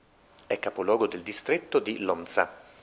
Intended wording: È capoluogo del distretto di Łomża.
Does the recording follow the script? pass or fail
pass